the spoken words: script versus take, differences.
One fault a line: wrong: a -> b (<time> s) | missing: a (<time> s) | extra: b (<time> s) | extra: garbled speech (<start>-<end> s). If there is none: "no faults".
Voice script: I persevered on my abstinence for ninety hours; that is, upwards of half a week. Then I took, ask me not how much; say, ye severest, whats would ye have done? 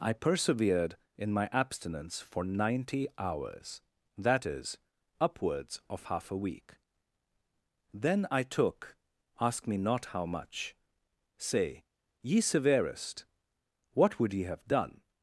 wrong: on -> in (1.1 s)
wrong: whats -> what (13.9 s)